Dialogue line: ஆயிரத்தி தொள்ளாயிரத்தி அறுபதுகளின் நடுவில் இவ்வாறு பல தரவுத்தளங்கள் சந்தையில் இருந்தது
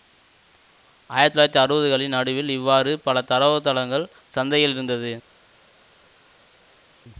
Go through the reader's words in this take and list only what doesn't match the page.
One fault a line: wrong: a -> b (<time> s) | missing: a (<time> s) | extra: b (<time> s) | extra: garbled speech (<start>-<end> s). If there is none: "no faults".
no faults